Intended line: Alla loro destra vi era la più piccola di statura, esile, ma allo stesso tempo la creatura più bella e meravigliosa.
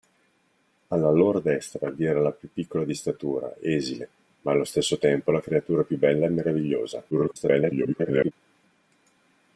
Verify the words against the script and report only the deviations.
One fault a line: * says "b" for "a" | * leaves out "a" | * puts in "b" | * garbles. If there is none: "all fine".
* garbles